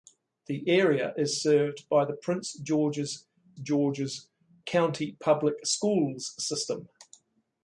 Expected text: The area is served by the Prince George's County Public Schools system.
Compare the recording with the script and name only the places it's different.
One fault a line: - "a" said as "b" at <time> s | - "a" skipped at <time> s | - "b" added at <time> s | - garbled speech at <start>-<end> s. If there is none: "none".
- "George's" added at 3.6 s